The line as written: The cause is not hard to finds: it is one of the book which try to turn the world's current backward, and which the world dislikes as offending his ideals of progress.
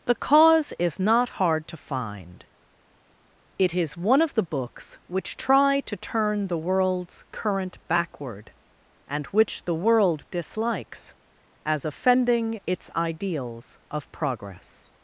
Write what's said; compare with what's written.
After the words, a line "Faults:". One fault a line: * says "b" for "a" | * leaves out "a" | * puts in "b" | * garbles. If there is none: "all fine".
The cause is not hard to find: it is one of the books which try to turn the world's current backward, and which the world dislikes as offending its ideals of progress.
Faults:
* says "find" for "finds"
* says "books" for "book"
* says "its" for "his"